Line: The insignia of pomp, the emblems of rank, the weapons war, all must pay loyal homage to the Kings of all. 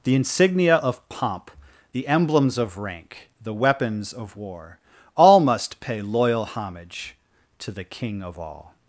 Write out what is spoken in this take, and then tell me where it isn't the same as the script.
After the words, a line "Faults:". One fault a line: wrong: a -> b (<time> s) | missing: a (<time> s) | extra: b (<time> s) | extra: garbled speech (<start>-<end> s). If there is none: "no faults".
The insignia of pomp, the emblems of rank, the weapons of war, all must pay loyal homage to the King of all.
Faults:
extra: of (4.1 s)
wrong: Kings -> King (7.8 s)